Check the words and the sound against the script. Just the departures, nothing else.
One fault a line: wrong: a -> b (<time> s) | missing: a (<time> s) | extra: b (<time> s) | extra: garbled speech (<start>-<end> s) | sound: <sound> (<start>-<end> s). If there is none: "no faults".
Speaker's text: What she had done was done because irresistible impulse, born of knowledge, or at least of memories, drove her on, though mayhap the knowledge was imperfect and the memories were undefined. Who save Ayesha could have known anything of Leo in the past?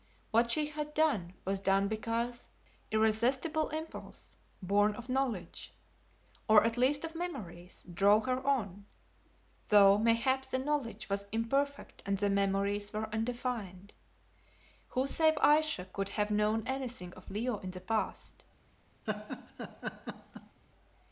sound: laugh (19.1-20.6 s)